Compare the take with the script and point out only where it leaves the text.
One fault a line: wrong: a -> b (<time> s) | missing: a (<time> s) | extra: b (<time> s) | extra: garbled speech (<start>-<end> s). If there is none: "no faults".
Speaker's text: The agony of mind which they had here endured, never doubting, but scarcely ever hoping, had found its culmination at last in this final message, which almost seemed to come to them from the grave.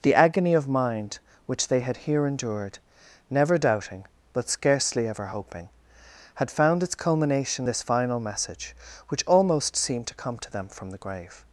missing: at last in (7.7 s)